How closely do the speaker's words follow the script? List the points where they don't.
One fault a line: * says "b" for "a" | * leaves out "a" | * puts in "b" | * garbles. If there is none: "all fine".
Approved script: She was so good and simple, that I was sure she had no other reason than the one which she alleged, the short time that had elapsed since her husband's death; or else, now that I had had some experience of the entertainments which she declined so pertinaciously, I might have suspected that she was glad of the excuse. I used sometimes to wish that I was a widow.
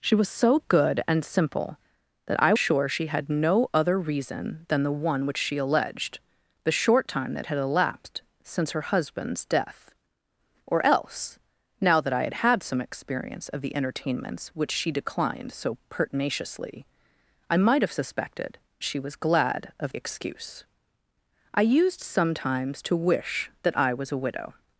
* leaves out "was"
* leaves out "that"
* leaves out "the"